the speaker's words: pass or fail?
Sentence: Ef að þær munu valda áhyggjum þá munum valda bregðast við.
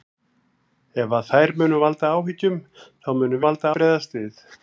pass